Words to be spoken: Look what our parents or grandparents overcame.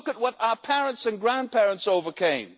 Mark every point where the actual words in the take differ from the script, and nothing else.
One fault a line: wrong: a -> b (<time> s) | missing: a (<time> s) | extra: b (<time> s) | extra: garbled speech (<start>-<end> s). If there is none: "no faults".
extra: at (0.1 s)
wrong: or -> and (1.0 s)